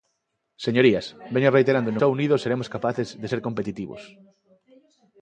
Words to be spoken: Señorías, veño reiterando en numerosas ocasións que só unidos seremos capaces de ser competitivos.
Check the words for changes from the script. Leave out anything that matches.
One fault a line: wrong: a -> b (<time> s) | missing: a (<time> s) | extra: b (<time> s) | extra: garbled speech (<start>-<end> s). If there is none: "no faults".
missing: numerosas ocasións que (2.0 s)